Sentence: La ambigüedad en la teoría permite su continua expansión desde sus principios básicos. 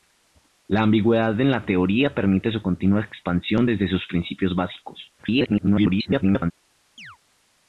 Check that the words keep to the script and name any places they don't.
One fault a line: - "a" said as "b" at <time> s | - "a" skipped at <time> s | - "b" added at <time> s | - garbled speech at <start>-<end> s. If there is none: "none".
- garbled speech at 5.2-6.5 s